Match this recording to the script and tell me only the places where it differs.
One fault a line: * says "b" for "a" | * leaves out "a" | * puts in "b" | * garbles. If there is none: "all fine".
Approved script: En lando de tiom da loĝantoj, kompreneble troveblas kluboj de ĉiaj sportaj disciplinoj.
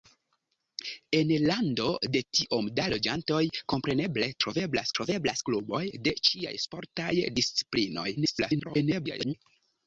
* puts in "troveblas"
* garbles